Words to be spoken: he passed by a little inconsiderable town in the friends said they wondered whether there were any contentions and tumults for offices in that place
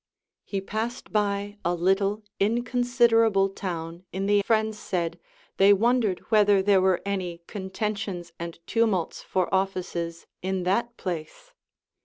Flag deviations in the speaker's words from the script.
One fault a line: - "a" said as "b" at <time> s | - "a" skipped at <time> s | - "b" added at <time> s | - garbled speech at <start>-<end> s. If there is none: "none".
none